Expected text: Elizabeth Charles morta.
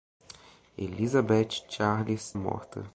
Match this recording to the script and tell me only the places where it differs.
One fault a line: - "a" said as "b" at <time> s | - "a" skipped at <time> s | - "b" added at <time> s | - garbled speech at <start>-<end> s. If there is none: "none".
none